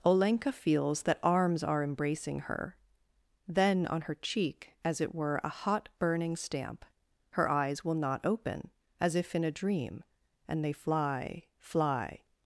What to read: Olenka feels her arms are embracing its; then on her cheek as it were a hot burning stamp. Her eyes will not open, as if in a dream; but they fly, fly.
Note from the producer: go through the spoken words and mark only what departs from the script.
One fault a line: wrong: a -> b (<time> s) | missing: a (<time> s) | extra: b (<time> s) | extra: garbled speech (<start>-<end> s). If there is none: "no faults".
wrong: her -> that (1.0 s)
wrong: its -> her (2.4 s)
wrong: but -> and (10.5 s)